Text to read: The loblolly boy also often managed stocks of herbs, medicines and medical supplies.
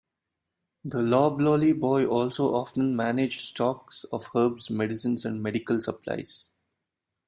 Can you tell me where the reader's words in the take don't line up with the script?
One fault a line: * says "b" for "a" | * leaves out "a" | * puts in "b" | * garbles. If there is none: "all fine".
all fine